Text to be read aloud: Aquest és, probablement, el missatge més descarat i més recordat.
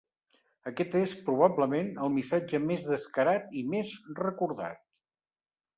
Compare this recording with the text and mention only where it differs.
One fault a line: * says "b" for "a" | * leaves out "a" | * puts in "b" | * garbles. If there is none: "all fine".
all fine